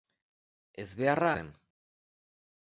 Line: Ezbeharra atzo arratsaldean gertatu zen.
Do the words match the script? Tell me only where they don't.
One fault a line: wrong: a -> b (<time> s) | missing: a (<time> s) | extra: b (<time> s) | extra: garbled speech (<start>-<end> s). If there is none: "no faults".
missing: atzo arratsaldean gertatu (1.3 s)